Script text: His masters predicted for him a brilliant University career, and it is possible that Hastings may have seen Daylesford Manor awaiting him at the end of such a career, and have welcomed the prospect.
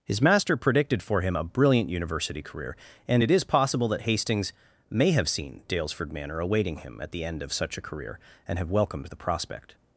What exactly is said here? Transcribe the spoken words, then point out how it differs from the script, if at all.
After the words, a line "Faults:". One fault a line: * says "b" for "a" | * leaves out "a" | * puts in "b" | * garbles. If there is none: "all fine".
His master predicted for him a brilliant University career, and it is possible that Hastings may have seen Daylesford Manor awaiting him at the end of such a career, and have welcomed the prospect.
Faults:
* says "master" for "masters"